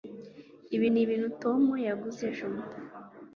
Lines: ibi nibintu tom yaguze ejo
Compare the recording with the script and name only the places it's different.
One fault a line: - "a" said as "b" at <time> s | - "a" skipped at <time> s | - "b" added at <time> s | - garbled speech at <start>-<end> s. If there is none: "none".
none